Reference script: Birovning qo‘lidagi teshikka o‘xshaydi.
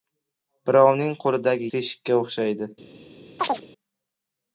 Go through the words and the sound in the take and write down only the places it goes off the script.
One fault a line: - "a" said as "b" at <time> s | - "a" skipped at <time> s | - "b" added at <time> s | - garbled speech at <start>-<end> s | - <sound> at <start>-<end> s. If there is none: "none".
- chirp at 3.4-3.7 s